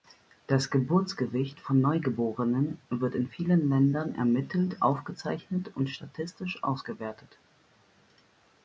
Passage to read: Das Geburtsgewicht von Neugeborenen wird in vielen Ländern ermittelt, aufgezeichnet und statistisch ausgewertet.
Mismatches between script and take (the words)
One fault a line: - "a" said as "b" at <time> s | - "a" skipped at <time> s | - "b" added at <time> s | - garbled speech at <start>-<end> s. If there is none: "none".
none